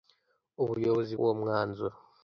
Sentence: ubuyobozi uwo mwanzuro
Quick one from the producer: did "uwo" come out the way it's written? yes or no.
yes